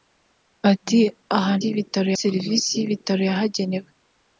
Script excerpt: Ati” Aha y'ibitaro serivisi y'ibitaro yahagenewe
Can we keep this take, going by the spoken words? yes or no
yes